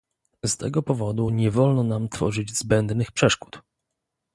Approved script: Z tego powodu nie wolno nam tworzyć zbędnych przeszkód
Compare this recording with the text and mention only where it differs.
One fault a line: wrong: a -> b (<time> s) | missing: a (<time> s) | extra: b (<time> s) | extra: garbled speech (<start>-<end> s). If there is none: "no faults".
no faults